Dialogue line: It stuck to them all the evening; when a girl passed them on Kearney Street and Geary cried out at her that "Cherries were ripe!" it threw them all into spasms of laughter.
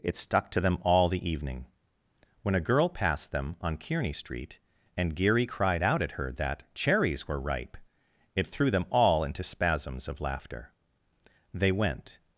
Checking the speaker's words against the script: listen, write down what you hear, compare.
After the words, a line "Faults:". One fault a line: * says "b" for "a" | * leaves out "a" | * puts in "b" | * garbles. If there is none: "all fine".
It stuck to them all the evening; when a girl passed them on Kearney Street and Geary cried out at her that "Cherries were ripe!" it threw them all into spasms of laughter. They went
Faults:
* puts in "They went"